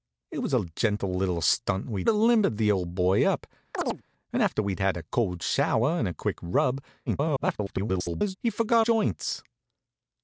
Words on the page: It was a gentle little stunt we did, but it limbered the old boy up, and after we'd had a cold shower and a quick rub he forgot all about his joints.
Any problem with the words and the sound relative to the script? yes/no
yes